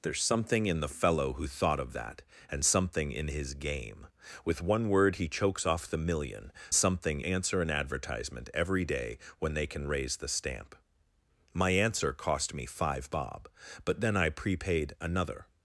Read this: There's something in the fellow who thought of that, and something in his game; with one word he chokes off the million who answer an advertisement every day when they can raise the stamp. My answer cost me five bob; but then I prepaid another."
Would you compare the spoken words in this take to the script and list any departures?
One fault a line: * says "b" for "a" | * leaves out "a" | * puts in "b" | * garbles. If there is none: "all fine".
* says "something" for "who"